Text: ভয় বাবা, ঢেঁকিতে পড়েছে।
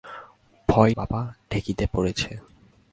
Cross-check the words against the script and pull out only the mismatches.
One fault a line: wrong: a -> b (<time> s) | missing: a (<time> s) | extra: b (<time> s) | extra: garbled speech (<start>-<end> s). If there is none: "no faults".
no faults